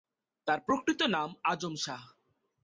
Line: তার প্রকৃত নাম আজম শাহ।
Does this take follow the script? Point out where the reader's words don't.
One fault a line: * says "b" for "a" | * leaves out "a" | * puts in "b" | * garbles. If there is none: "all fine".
all fine